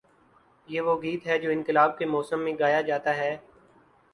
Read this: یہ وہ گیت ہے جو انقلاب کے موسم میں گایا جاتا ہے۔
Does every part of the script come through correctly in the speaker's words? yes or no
yes